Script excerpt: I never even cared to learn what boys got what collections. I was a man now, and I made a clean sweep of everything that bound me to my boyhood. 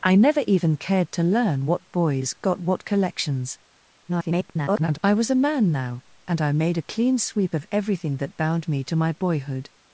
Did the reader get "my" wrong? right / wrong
right